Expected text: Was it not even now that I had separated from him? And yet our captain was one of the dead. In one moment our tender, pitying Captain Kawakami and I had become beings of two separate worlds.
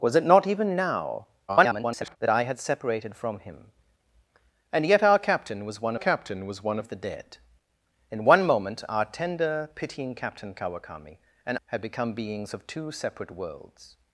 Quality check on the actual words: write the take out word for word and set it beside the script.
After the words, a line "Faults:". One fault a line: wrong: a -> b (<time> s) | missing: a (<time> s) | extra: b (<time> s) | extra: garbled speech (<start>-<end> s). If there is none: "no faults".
Was it not even now [garbled] that I had separated from him? And yet our captain was one captain was one of the dead. In one moment our tender, pitying Captain Kawakami and had become beings of two separate worlds.
Faults:
extra: garbled speech (1.5-2.2 s)
extra: captain was one (6.0 s)
missing: I (11.6 s)